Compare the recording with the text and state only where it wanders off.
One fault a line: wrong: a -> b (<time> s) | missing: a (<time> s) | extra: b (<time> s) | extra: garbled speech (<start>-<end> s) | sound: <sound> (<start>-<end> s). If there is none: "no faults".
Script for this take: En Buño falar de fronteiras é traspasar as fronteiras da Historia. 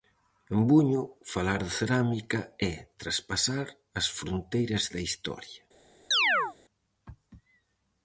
wrong: fronteiras -> cerámica (1.8 s)
sound: chirp (6.1-6.6 s)